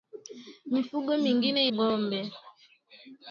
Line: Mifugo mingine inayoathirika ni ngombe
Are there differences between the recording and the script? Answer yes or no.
yes